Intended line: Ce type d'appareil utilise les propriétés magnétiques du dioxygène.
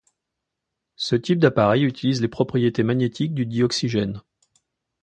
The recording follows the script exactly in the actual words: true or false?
true